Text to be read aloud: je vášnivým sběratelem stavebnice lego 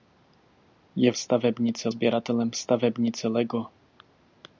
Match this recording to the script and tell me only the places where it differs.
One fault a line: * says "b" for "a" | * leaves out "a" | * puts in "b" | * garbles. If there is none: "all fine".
* says "stavebnice" for "vášnivým"